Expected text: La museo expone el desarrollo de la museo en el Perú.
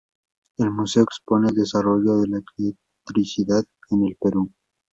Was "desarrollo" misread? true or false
false